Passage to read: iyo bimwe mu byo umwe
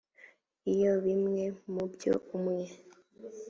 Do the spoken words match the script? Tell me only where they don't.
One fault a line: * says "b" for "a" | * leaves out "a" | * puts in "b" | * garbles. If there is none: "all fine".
all fine